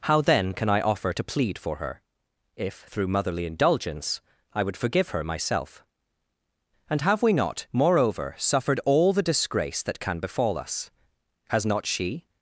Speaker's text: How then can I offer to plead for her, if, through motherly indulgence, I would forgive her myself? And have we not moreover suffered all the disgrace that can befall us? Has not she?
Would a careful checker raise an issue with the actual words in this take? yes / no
no